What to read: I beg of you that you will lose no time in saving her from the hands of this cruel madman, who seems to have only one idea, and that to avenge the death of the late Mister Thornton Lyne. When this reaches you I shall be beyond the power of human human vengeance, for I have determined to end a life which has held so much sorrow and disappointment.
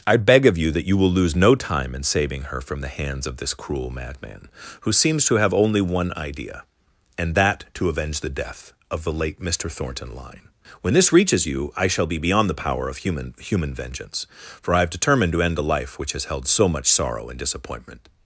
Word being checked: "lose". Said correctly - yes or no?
yes